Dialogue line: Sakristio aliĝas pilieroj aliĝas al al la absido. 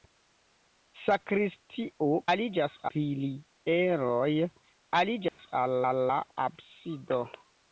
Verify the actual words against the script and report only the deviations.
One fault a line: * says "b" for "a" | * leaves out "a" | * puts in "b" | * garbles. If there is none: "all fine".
all fine